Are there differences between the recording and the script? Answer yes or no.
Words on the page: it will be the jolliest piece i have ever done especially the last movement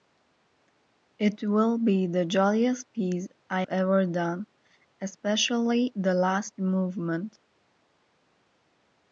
yes